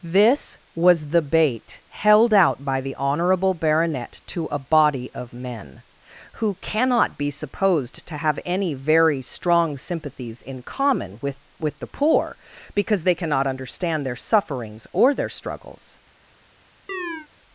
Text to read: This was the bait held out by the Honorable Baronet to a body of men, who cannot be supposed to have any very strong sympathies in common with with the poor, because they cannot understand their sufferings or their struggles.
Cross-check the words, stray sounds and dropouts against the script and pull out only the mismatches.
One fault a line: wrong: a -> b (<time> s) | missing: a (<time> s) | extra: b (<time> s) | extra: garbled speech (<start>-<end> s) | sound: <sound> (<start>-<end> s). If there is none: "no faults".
sound: chirp (16.9-17.3 s)